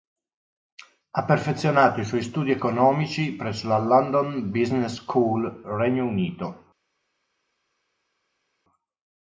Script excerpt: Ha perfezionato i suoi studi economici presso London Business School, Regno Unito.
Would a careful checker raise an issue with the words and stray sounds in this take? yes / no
yes